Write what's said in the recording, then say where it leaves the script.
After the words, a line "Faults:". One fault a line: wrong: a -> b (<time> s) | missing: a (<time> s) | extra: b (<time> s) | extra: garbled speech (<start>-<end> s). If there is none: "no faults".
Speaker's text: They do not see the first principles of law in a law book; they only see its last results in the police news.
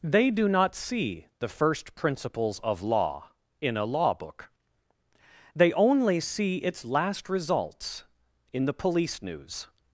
They do not see the first principles of law in a law book; they only see its last results in the police news.
Faults:
no faults